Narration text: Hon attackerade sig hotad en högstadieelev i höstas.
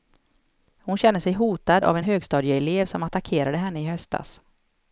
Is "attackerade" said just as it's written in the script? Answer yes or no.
no